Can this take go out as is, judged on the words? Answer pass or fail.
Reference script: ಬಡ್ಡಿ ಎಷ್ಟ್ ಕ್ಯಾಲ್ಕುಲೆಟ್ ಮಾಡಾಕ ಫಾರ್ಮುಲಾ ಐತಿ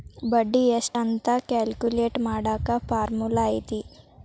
fail